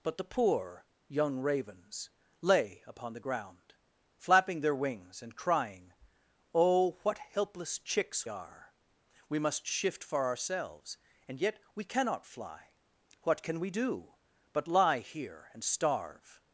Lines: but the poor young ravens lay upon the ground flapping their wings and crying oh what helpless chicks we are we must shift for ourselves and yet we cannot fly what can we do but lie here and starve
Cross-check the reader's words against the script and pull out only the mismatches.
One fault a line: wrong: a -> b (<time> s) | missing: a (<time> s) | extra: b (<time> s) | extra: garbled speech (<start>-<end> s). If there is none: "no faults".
missing: we (8.3 s)